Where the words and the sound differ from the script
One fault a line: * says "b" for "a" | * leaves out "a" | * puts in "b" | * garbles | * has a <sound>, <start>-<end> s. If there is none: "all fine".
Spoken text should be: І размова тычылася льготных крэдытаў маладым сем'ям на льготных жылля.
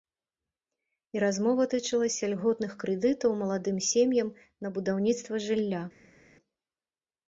* says "будаўніцтва" for "льготных"